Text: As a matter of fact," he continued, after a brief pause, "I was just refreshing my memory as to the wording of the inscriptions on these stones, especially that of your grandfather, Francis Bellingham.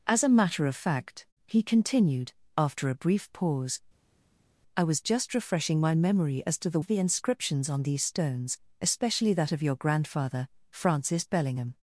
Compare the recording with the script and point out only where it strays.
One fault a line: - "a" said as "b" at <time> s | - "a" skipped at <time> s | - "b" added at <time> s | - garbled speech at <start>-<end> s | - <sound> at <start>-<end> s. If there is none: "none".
- "wording" skipped at 6.8 s